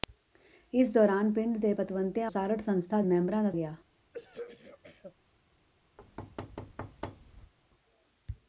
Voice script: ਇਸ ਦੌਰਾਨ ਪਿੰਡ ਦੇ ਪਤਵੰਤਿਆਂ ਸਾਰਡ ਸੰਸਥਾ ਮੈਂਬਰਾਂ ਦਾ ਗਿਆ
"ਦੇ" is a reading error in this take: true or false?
false